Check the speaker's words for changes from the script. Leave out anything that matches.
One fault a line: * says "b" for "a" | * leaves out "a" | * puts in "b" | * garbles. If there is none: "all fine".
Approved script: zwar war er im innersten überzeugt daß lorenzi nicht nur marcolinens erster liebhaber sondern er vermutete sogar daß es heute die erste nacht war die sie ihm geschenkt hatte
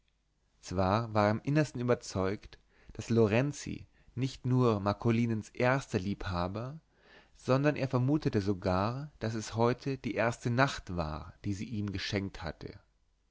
all fine